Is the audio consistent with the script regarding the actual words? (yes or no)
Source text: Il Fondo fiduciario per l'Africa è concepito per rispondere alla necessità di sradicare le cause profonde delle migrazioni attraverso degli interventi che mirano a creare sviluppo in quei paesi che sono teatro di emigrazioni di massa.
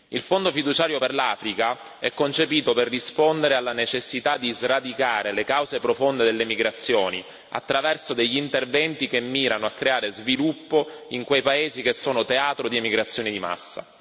yes